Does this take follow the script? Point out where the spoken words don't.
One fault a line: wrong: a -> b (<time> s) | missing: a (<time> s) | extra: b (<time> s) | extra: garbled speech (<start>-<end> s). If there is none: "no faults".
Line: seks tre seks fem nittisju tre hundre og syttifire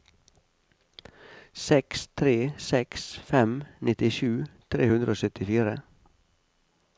no faults